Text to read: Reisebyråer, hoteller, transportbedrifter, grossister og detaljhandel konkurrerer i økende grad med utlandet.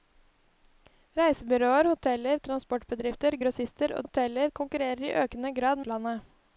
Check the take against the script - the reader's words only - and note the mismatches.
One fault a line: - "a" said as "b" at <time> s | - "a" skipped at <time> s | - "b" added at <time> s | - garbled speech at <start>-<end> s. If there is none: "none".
- "detaljhandel" said as "hoteller" at 4.0 s
- "med" skipped at 5.8 s